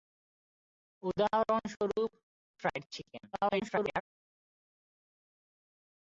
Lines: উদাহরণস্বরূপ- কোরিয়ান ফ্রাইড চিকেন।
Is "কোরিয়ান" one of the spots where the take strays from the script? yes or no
yes